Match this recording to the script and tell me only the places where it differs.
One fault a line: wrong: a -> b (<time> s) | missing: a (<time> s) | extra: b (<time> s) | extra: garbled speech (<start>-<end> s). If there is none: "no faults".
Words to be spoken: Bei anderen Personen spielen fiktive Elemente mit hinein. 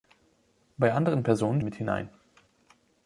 missing: spielen fiktive Elemente (1.6 s)